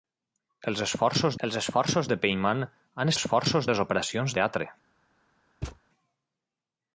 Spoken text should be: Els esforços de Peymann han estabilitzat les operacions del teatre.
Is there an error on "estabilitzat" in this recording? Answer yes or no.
yes